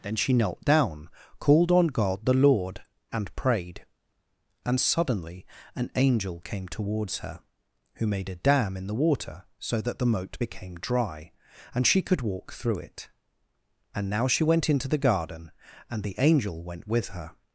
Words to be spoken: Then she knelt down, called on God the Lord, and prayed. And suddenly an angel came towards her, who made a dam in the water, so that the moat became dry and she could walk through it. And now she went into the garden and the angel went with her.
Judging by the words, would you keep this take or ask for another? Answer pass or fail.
pass